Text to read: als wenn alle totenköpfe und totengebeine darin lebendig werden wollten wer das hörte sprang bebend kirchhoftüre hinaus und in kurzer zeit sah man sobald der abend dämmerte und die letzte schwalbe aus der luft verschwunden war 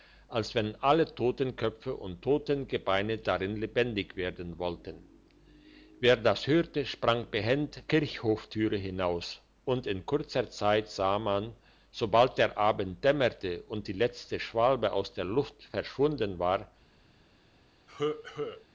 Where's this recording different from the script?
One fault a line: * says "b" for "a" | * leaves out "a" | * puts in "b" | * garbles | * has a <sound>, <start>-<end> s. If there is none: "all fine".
* has a cough, 17.9-18.6 s